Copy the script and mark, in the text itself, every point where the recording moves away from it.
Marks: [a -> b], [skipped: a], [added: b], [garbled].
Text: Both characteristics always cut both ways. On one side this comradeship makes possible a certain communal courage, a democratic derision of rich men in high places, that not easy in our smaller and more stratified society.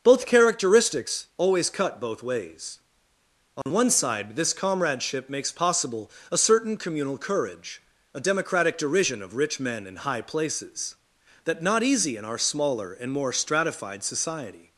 Both characteristics always cut both ways. On one side this comradeship makes possible a certain communal courage, a democratic derision of rich men in high places, that not easy in our smaller and more stratified society.